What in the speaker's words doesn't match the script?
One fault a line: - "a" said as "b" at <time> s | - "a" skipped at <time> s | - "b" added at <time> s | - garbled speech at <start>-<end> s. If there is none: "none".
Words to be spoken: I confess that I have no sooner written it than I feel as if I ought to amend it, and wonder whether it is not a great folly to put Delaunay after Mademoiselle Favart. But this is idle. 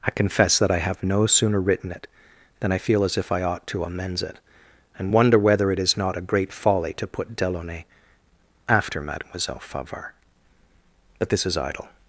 - "amend" said as "amends" at 3.8 s